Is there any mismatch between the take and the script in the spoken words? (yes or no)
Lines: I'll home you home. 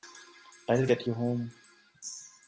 yes